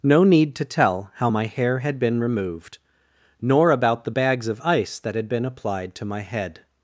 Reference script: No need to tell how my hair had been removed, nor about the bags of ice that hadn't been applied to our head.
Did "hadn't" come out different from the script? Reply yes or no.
yes